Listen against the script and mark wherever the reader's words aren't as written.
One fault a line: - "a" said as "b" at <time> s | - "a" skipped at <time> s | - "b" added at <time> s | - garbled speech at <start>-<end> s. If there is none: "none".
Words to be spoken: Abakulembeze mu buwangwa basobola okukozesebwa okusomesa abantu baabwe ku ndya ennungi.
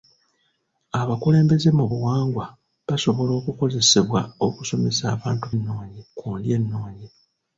- "baabwe" said as "ennungi" at 5.5 s